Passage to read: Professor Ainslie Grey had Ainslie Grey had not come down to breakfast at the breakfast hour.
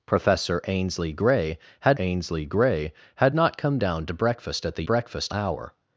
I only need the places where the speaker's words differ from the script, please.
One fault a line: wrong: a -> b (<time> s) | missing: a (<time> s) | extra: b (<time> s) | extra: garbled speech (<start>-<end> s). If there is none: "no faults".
no faults